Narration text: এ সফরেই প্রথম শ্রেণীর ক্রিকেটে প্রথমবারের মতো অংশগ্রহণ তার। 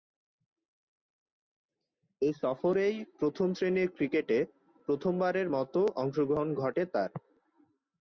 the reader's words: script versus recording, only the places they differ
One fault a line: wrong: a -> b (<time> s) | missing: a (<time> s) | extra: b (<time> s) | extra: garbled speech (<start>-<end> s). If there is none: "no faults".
extra: ঘটে (6.6 s)